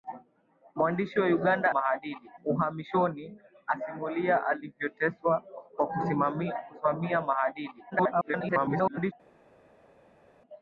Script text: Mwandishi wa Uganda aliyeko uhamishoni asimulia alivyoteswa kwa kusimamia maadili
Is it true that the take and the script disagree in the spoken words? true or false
true